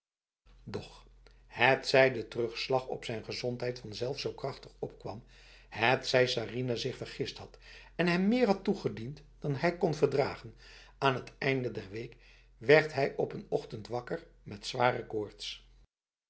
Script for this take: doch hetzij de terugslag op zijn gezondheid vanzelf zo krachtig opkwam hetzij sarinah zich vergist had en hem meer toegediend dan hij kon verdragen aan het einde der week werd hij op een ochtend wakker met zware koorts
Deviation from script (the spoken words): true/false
true